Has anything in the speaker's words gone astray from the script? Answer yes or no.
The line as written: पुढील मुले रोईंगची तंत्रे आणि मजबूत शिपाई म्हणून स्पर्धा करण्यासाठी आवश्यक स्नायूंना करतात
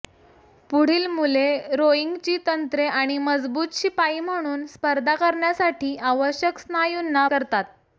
no